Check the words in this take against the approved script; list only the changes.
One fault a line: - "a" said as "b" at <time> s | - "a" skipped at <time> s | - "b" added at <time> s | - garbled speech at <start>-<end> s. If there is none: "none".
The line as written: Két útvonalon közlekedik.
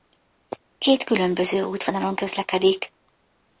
- "különböző" added at 1.0 s